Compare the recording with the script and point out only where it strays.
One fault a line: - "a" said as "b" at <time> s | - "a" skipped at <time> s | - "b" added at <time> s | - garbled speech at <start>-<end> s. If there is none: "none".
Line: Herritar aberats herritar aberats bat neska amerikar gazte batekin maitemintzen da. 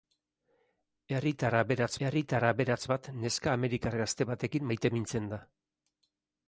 none